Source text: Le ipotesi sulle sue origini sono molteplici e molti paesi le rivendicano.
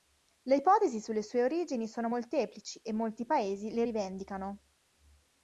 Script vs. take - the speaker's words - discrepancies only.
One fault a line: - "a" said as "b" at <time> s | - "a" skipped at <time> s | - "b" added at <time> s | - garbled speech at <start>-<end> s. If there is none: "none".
none